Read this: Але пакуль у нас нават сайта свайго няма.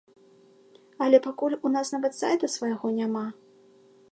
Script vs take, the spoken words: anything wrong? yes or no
no